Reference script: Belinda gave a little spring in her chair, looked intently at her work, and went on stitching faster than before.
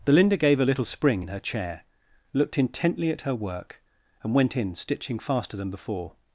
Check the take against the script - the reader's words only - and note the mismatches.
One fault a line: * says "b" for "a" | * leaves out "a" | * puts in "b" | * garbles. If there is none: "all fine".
* says "in" for "on"